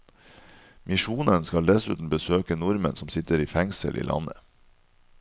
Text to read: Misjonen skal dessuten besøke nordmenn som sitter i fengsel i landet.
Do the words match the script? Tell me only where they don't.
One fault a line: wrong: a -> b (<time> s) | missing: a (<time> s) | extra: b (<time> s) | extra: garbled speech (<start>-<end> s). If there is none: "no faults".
no faults